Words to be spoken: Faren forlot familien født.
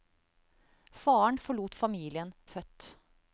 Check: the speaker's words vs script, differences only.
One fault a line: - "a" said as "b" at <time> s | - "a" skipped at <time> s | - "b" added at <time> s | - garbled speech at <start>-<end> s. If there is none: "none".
none